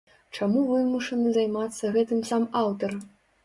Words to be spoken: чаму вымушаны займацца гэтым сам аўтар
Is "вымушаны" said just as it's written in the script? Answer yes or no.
yes